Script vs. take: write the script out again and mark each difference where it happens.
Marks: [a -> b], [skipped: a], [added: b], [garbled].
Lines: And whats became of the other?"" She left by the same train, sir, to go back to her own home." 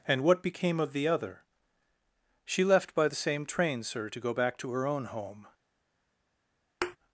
And [whats -> what] became of the other?"" She left by the same train, sir, to go back to her own home."